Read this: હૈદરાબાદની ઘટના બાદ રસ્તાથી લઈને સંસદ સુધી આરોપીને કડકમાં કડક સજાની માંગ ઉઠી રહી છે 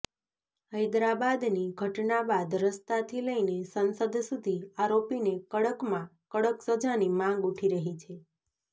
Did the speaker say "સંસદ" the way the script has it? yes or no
yes